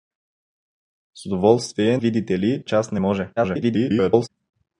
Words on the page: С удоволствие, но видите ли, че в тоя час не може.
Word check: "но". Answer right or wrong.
wrong